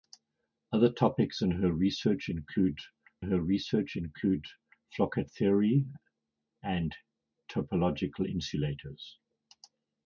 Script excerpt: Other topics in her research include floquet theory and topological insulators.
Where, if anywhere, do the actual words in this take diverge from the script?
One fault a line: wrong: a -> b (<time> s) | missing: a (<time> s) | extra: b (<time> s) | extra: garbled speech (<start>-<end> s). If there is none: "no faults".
extra: her research include (3.2 s)